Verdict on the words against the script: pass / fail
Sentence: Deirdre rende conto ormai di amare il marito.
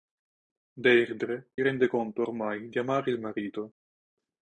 pass